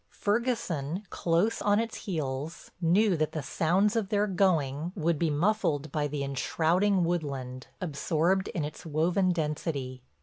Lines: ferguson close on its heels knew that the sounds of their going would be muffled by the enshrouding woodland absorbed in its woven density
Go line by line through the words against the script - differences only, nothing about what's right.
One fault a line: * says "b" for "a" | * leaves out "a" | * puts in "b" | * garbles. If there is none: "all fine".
all fine